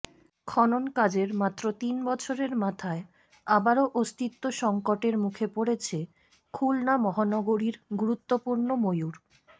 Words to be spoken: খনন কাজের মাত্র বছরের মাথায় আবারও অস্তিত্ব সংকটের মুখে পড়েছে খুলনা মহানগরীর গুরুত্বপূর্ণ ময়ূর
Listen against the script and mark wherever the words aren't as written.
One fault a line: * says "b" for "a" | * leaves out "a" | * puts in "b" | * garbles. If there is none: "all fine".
* puts in "তিন"